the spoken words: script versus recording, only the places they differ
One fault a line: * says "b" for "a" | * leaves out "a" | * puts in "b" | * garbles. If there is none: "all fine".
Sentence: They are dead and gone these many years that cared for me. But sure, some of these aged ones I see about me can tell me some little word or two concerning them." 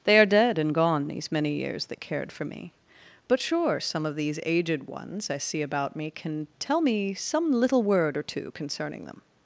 all fine